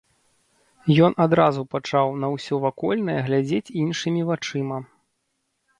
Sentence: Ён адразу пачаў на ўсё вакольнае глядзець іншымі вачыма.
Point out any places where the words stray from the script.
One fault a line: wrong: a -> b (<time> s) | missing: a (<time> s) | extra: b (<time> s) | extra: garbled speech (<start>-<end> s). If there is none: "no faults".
no faults